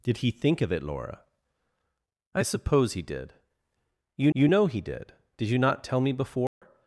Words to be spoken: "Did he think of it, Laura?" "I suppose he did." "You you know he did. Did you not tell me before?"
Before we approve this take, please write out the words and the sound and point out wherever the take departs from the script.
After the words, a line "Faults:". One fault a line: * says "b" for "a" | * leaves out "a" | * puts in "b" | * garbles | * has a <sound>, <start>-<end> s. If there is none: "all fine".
"Did he think of it, Laura?" "I suppose he did." "You you know he did. Did you not tell me before?"
Faults:
* has a dropout, 6.5-6.6 s